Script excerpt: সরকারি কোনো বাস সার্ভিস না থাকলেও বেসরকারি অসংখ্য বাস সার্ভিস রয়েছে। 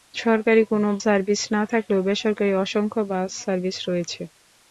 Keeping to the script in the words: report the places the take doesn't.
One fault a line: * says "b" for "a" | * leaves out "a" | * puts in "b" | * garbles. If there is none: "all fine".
* leaves out "বাস"